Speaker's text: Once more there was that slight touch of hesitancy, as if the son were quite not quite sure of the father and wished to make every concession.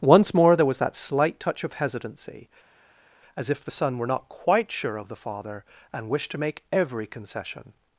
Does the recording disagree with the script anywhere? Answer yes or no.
yes